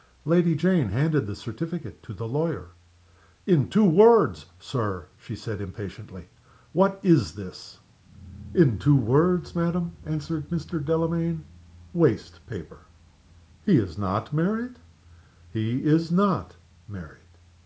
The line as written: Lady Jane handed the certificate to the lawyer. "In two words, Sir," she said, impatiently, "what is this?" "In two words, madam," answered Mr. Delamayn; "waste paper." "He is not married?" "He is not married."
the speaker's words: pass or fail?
pass